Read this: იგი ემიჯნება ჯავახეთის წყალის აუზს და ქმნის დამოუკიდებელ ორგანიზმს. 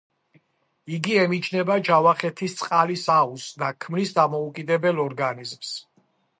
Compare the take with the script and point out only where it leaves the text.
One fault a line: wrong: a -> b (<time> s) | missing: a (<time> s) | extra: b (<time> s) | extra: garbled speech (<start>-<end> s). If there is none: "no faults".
no faults